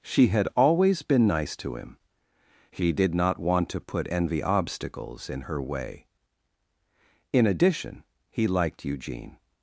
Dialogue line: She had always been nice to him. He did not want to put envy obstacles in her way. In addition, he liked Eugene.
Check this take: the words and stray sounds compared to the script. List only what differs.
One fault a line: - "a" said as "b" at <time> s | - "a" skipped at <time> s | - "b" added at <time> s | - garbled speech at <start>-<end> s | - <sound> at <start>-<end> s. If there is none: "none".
none